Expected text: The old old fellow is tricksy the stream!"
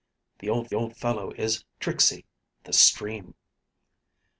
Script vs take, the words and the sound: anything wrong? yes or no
no